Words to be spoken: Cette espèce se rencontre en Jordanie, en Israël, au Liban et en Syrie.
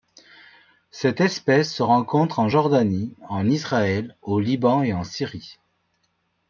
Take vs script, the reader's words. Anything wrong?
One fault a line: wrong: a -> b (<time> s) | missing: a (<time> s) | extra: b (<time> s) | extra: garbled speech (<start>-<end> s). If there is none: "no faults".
no faults